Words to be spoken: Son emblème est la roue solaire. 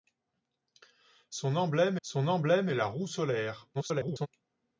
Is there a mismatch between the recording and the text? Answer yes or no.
yes